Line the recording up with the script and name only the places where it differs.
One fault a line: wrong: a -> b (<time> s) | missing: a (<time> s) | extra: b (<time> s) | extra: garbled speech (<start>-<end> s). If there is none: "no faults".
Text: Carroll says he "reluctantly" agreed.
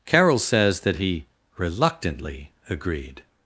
extra: that (0.8 s)